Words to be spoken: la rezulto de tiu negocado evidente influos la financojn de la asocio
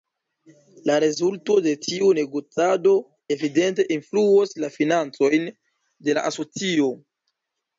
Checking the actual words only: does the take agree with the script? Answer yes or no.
yes